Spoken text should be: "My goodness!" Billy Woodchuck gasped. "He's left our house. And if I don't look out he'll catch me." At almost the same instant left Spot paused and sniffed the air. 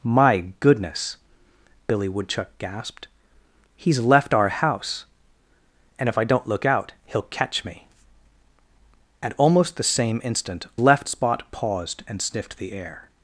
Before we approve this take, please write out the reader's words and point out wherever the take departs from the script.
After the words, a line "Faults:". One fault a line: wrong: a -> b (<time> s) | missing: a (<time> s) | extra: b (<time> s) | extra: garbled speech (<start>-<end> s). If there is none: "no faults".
"My goodness!" Billy Woodchuck gasped. "He's left our house. And if I don't look out he'll catch me." At almost the same instant left Spot paused and sniffed the air.
Faults:
no faults